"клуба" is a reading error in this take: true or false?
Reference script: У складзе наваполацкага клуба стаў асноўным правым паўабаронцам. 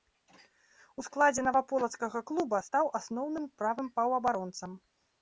false